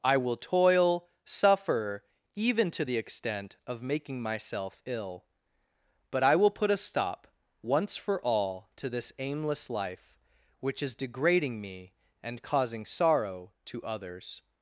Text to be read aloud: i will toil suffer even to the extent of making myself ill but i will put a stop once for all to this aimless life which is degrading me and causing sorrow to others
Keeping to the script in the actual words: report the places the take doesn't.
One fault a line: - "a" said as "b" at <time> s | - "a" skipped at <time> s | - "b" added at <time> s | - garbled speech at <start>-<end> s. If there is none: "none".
none